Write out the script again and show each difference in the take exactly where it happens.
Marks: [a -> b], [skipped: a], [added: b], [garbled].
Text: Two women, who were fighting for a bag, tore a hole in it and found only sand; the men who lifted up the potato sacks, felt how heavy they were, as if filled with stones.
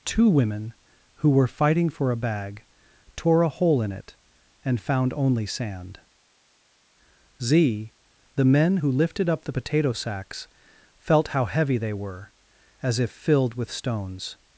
Two women, who were fighting for a bag, tore a hole in it and found only sand; [added: z] the men who lifted up the potato sacks, felt how heavy they were, as if filled with stones.